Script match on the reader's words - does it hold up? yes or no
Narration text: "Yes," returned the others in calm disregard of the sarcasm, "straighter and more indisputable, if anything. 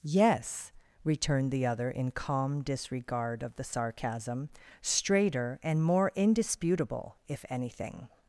no